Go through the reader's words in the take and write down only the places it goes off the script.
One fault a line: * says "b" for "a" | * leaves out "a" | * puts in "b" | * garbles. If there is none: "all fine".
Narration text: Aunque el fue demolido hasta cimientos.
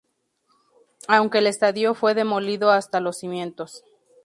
* puts in "estadio"
* puts in "los"